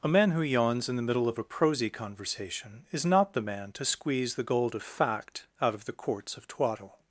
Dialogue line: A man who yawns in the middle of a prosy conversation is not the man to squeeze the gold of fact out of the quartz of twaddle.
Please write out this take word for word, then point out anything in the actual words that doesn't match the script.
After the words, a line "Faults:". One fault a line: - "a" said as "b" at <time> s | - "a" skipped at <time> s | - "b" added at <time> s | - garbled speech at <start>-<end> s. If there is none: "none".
A man who yawns in the middle of a prosy conversation is not the man to squeeze the gold of fact out of the quartz of twaddle.
Faults:
none